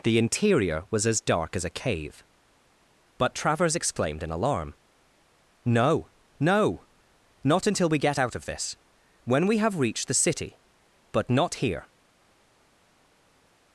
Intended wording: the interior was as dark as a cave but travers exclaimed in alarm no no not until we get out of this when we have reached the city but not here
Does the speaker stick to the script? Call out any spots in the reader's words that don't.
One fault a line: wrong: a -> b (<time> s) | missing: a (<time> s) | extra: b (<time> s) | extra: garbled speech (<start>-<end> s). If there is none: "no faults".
no faults